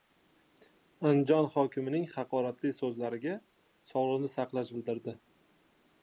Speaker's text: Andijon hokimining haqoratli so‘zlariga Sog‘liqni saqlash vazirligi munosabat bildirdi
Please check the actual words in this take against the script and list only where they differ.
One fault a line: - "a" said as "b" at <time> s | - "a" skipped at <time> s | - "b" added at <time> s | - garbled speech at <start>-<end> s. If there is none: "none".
- "vazirligi munosabat" skipped at 4.8 s